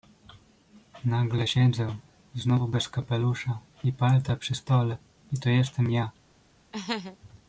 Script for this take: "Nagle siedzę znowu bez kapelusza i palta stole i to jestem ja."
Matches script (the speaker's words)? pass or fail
fail